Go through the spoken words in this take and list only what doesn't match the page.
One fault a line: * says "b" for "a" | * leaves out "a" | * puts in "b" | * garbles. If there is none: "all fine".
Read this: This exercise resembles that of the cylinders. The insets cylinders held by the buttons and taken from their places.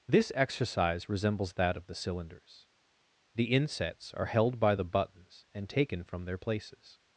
* says "are" for "cylinders"